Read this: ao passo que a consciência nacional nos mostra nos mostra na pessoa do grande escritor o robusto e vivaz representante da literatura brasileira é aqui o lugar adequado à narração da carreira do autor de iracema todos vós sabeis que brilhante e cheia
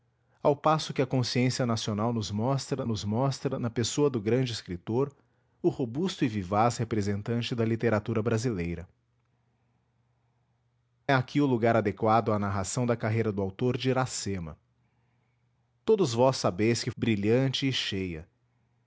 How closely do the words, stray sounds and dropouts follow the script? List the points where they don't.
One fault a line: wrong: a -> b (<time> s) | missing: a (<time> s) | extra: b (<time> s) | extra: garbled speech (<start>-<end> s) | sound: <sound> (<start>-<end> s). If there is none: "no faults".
no faults